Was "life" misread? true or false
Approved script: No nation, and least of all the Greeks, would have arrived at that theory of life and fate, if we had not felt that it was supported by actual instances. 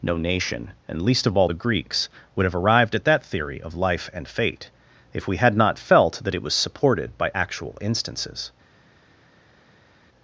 false